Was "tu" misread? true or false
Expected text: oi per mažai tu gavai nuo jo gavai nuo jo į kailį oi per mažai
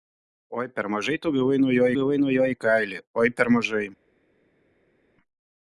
false